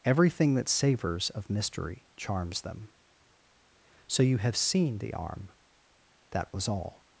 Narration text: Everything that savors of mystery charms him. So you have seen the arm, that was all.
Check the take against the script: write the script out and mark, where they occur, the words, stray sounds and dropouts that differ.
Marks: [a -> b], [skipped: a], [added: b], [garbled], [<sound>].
Everything that savors of mystery charms [him. -> them] So you have seen the arm, that was all.